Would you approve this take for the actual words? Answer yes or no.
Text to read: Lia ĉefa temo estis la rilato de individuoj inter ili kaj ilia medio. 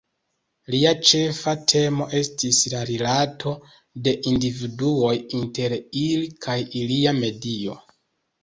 yes